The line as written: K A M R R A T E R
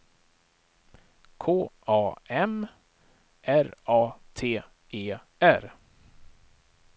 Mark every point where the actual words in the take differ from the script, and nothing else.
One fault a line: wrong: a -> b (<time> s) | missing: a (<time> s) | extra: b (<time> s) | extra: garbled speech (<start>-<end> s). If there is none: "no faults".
missing: R (3.7 s)